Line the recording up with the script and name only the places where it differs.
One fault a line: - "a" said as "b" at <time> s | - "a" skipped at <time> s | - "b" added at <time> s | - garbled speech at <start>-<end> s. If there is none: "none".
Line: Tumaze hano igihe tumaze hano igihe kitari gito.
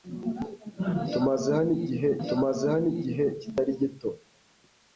none